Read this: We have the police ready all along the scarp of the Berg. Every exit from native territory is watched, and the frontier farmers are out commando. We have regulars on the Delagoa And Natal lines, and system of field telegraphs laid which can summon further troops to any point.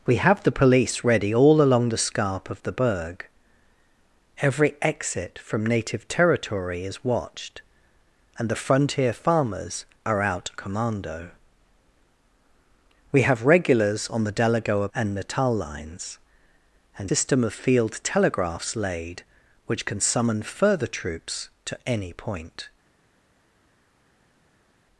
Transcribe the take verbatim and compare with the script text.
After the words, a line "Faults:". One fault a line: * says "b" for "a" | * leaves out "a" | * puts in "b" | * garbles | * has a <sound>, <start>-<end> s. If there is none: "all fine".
We have the police ready all along the scarp of the Berg. Every exit from native territory is watched, and the frontier farmers are out commando. We have regulars on the Delagoa And Natal lines, and system of field telegraphs laid which can summon further troops to any point.
Faults:
all fine